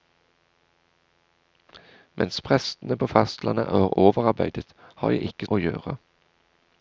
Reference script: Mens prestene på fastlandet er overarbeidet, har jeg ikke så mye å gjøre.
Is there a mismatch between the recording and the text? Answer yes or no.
yes